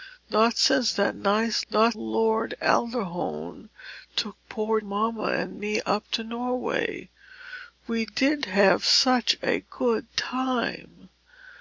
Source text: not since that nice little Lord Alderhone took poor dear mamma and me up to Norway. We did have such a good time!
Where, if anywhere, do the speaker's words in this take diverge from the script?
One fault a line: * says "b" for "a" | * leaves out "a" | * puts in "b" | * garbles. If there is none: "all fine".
* says "not" for "little"
* leaves out "dear"